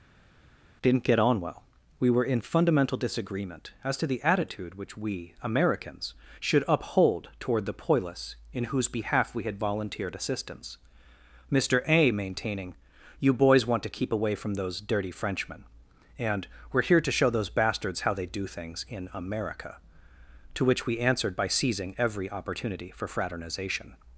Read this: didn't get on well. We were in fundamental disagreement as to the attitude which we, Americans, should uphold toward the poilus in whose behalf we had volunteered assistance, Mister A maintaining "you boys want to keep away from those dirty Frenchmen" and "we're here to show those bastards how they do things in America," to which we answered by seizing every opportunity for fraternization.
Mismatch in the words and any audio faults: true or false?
false